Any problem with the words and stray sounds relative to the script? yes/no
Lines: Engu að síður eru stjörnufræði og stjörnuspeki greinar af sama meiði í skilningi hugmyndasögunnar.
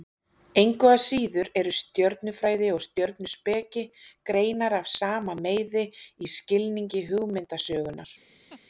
yes